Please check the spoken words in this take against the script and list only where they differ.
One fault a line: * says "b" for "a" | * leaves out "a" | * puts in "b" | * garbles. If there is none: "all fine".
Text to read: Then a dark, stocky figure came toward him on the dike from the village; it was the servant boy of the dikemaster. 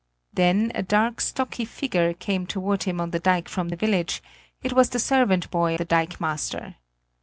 * leaves out "of"